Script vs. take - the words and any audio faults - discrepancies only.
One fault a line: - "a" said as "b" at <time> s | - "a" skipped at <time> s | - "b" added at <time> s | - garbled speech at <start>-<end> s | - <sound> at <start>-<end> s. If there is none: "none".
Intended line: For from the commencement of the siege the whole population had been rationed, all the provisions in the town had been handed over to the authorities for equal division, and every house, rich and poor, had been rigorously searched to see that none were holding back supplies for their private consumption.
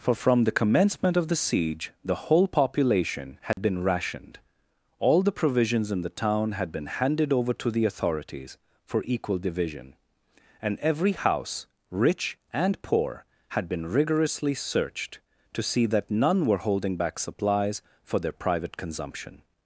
- dropout at 3.5-3.6 s